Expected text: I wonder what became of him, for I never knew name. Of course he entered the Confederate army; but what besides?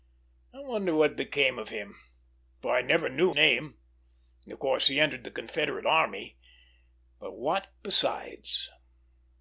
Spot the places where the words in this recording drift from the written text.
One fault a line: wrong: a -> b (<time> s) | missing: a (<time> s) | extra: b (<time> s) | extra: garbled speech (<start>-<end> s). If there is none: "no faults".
no faults